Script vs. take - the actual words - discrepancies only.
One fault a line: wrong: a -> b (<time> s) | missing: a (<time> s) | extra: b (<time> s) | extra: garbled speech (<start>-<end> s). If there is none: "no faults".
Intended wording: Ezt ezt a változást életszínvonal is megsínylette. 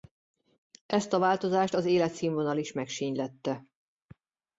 missing: ezt (1.1 s)
extra: az (1.7 s)